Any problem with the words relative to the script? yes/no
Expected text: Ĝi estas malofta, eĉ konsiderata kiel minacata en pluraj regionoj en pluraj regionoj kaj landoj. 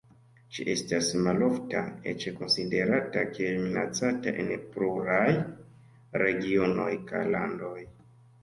yes